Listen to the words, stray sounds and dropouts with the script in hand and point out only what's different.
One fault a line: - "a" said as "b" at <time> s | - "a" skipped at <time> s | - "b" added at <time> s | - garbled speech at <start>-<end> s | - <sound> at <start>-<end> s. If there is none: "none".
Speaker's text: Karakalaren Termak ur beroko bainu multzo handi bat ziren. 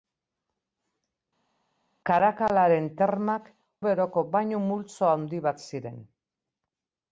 - "ur" skipped at 3.5 s